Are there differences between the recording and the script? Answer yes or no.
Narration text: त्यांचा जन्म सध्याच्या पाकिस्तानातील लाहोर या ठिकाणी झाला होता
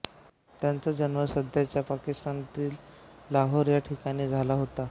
no